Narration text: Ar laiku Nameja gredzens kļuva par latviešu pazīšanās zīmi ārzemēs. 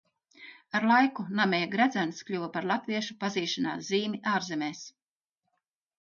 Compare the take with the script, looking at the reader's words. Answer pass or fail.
pass